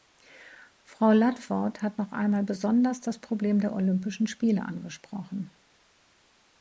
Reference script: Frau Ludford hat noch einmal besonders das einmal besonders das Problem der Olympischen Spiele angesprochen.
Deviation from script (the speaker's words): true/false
true